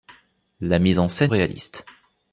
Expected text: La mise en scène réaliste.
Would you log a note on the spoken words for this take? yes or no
no